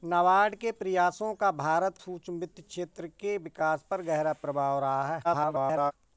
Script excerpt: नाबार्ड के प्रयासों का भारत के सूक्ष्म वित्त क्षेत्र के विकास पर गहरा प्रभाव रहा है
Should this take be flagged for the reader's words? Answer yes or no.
yes